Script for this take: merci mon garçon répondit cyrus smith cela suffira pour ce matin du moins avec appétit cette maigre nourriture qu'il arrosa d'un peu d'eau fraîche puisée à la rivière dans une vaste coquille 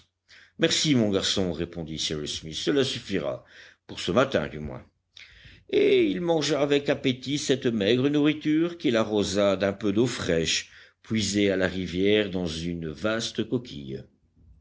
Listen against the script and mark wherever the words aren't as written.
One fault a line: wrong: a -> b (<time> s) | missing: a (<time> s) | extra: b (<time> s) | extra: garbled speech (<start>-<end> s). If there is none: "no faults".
extra: et il mangea (5.7 s)